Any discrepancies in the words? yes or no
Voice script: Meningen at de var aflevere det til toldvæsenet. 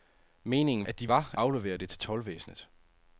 no